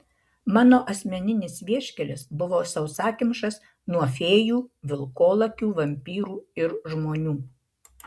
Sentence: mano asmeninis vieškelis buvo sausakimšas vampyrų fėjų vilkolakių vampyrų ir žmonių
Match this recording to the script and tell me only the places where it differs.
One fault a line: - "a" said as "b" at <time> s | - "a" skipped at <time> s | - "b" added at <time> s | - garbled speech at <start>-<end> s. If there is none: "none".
- "vampyrų" said as "nuo" at 4.0 s